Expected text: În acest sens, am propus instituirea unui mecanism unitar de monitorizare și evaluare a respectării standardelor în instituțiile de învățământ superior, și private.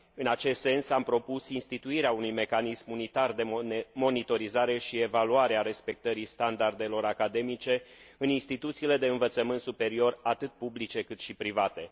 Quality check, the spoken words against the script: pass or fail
fail